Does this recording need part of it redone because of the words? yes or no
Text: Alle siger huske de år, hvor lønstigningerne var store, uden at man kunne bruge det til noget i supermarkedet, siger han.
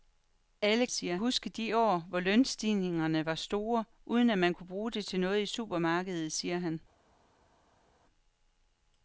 no